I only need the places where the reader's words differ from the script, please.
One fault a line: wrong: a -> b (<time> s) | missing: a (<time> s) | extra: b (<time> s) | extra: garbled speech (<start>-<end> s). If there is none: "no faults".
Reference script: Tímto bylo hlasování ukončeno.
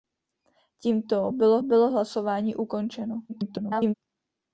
extra: bylo (1.6 s)
extra: garbled speech (3.3-3.9 s)